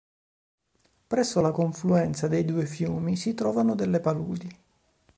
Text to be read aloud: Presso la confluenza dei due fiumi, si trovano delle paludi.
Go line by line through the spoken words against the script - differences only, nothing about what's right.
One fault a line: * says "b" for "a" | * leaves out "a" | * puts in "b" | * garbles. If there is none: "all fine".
all fine